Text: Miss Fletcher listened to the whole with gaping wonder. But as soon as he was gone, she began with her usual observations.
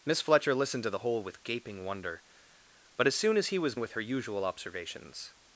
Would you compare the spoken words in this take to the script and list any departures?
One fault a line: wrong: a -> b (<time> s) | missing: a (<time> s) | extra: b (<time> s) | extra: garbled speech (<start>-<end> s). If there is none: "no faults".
missing: gone she began (3.8 s)